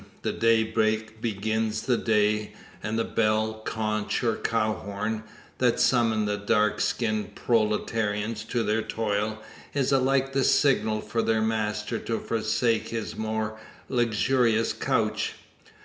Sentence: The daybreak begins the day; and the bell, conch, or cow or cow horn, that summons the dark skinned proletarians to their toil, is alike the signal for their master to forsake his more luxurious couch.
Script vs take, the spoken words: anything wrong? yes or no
yes